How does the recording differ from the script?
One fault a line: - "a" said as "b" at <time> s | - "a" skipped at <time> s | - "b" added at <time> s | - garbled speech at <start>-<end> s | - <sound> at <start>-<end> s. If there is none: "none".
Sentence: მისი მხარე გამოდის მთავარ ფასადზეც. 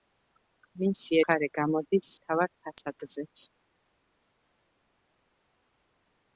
none